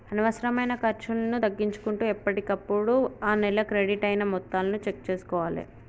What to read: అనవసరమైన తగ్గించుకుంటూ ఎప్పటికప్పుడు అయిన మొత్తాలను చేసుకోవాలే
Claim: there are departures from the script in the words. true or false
true